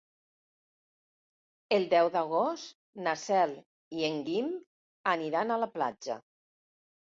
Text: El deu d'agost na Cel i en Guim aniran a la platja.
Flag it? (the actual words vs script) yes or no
no